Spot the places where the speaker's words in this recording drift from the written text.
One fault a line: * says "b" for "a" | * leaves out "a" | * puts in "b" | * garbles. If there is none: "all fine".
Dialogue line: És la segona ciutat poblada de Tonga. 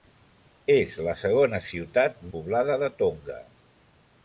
all fine